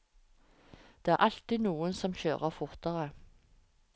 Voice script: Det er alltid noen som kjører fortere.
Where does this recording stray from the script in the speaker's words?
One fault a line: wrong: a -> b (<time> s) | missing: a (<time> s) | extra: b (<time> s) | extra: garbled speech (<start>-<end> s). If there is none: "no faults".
no faults